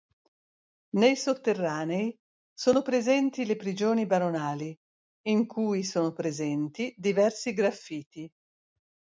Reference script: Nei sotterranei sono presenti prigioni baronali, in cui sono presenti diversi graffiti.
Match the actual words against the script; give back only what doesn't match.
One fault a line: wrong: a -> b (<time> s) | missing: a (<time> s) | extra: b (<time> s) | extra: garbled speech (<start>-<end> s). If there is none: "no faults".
extra: le (3.4 s)